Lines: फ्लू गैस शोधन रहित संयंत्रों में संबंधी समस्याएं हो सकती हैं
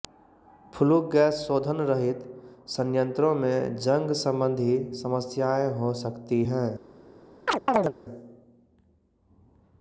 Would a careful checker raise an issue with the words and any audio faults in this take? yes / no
yes